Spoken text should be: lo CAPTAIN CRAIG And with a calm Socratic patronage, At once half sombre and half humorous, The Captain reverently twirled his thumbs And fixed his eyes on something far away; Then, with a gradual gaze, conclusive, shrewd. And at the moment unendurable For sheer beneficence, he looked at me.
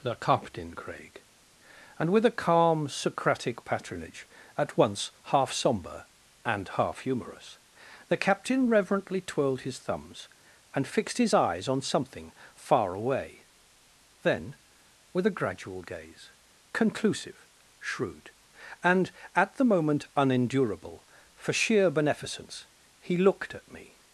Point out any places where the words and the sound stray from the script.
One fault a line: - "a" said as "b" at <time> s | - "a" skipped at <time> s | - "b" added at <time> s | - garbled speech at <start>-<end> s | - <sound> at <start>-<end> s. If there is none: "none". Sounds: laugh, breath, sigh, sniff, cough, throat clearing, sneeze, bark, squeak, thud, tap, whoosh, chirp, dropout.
- "lo" said as "the" at 0.0 s